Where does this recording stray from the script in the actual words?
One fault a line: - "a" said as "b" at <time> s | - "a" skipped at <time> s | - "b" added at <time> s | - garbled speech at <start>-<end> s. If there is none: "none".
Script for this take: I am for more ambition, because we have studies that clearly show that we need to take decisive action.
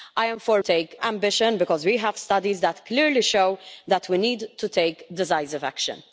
- "more" said as "take" at 0.6 s